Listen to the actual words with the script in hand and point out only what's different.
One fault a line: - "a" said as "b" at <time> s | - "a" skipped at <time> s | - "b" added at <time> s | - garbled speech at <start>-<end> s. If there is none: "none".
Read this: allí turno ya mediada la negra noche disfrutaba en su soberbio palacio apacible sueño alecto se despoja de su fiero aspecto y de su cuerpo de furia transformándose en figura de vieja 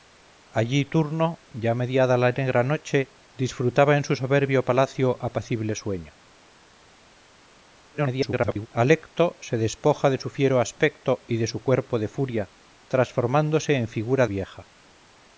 - garbled speech at 7.9-8.7 s
- "de" skipped at 14.3 s